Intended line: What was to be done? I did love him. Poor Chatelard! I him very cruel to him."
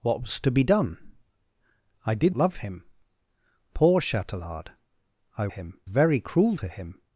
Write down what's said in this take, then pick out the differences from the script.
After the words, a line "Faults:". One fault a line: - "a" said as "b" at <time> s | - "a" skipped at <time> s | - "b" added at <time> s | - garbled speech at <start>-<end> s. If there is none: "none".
What was to be done? I did love him. Poor Chatelard! I him very cruel to him."
Faults:
none